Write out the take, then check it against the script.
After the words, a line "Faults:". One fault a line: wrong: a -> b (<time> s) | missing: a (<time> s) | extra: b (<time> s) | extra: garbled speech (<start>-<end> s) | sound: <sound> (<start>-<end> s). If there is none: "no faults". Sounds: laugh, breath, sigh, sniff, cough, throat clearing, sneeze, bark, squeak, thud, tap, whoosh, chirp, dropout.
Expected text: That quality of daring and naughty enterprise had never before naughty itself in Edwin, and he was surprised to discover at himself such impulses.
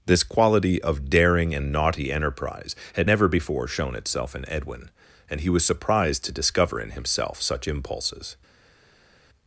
This quality of daring and naughty enterprise had never before shown itself in Edwin, and he was surprised to discover in himself such impulses.
Faults:
wrong: That -> This (0.1 s)
wrong: naughty -> shown (3.7 s)
wrong: at -> in (6.8 s)